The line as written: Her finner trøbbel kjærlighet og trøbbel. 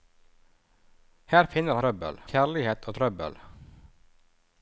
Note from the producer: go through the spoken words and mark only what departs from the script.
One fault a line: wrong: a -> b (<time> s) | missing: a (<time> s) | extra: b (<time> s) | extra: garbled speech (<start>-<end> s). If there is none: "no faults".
no faults